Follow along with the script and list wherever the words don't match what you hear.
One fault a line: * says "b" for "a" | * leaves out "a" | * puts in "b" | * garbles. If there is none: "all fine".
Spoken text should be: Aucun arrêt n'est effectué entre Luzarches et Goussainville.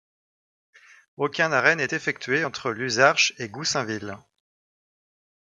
all fine